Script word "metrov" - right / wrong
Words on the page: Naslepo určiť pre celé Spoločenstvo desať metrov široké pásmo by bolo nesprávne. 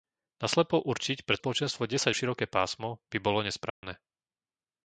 wrong